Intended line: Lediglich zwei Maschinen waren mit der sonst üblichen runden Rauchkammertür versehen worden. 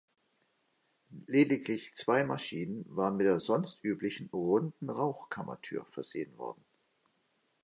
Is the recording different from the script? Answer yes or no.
no